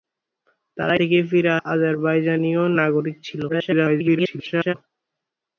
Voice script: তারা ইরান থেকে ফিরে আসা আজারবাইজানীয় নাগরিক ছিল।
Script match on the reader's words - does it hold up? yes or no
no